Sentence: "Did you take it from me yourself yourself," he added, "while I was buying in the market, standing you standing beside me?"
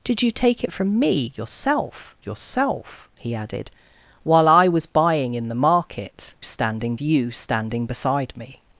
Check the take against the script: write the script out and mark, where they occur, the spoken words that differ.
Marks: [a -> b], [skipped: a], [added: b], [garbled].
"Did you take it from me yourself yourself," he added, "while I was buying in the market, standing you standing beside me?"